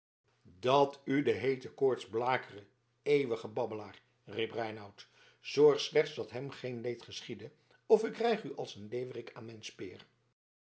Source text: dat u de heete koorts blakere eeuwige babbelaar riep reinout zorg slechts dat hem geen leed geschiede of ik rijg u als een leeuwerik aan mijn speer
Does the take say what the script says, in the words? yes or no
yes